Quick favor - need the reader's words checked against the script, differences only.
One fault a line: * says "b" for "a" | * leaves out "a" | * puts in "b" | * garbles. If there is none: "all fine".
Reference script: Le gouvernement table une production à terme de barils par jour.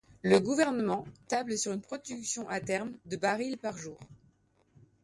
* puts in "sur"